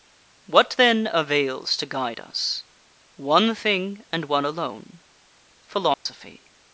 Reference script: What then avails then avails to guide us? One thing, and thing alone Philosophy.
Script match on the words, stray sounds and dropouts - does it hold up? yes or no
no